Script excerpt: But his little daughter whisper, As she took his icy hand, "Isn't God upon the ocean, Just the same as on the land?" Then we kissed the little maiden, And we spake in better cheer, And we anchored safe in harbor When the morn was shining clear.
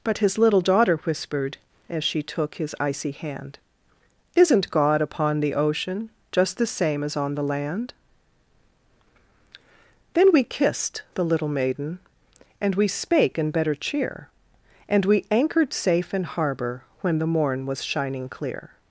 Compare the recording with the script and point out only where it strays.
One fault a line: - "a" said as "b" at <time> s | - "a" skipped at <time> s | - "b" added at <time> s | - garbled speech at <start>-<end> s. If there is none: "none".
- "whisper" said as "whispered" at 1.0 s